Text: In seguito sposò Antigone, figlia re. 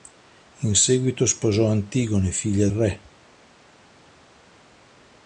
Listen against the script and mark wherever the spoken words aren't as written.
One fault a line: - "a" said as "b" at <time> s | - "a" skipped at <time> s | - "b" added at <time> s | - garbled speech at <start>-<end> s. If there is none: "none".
none